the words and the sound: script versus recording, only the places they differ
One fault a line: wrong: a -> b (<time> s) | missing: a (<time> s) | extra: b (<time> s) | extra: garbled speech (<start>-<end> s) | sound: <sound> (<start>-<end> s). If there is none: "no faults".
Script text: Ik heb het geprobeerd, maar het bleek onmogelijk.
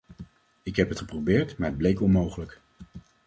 no faults